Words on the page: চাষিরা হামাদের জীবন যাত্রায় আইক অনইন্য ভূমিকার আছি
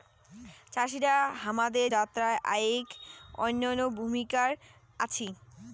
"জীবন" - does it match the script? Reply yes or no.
no